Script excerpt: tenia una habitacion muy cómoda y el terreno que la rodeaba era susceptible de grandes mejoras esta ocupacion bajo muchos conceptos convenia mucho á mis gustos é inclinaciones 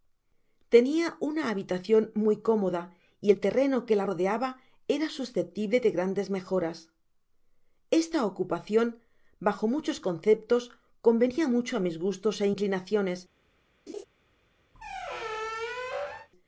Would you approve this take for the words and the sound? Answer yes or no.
no